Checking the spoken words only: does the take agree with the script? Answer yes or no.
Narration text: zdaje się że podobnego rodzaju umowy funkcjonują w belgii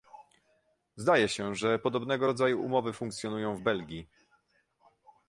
yes